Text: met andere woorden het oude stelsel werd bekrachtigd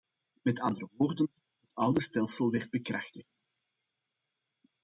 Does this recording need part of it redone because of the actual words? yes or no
no